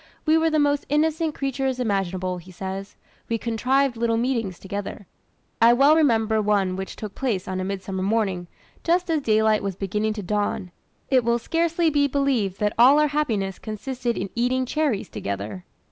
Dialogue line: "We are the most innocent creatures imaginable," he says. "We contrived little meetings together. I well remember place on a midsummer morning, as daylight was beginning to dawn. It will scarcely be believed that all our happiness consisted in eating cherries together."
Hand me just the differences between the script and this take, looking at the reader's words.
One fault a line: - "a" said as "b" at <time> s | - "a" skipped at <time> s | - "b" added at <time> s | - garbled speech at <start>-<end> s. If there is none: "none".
- "are" said as "were" at 0.3 s
- "one which took" added at 6.4 s
- "just" added at 8.8 s